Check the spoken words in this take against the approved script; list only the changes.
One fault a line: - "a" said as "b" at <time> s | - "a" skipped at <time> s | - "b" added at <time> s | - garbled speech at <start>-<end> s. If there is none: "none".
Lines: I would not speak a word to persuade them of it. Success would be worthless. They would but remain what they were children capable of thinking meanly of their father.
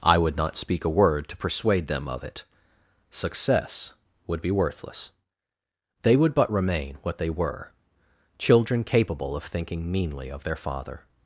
none